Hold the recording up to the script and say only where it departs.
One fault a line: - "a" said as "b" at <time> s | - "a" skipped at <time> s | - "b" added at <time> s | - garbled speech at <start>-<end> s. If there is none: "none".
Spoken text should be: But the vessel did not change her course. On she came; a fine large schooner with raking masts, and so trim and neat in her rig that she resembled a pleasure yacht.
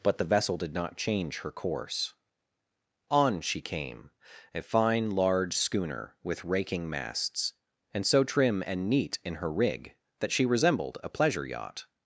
none